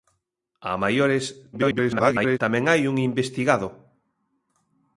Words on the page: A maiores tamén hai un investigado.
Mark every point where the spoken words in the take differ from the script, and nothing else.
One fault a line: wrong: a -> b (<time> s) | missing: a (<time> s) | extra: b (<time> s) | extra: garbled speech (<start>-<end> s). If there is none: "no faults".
extra: garbled speech (1.5-2.4 s)